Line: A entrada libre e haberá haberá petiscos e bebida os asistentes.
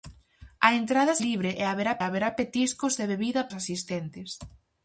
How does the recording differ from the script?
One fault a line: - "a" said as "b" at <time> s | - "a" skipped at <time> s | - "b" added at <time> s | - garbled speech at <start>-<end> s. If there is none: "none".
none